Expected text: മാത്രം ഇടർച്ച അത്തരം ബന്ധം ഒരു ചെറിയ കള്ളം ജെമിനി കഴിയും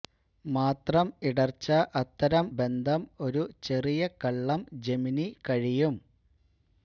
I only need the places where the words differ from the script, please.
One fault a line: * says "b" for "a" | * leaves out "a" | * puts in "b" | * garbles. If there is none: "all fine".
all fine